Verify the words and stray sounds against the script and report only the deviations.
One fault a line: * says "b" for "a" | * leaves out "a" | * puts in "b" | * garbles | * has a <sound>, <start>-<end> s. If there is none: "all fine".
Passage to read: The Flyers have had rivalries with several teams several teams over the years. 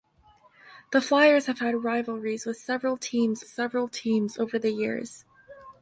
all fine